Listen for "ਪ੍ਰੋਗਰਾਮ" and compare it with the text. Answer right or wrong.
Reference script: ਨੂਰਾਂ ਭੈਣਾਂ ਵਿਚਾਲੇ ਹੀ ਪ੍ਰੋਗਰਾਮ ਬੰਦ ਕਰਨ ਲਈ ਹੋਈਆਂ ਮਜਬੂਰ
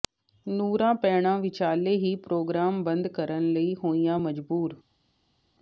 right